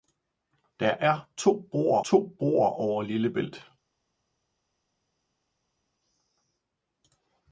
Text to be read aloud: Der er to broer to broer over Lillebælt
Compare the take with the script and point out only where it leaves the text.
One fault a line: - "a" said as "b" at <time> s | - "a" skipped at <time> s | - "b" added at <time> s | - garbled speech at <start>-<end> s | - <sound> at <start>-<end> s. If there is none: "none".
none